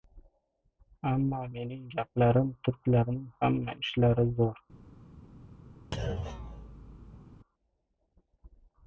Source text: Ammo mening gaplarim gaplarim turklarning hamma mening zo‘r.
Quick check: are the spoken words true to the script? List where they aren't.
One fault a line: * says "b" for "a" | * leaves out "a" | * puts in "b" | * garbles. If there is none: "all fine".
* leaves out "gaplarim"
* says "ishlari" for "mening"